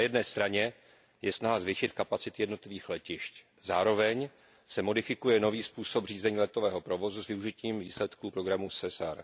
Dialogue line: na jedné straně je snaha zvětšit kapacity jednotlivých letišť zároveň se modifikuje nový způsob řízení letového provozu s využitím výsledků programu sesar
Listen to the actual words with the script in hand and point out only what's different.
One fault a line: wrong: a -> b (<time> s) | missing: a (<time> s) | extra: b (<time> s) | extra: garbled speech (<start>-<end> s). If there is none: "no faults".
no faults